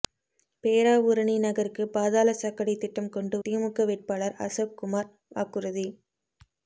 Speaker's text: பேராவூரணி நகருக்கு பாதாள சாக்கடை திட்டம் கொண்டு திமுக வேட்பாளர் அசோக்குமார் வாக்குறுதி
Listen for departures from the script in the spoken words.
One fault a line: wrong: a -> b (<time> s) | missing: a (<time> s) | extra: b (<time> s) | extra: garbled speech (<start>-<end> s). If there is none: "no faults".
no faults